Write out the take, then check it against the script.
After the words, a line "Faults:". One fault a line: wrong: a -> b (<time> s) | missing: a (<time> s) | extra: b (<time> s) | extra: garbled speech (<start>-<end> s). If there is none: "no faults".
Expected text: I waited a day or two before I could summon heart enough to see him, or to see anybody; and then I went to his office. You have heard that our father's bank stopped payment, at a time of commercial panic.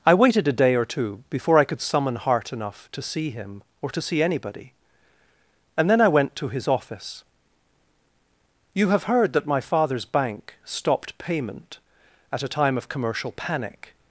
I waited a day or two before I could summon heart enough to see him, or to see anybody; and then I went to his office. You have heard that my father's bank stopped payment, at a time of commercial panic.
Faults:
wrong: our -> my (9.4 s)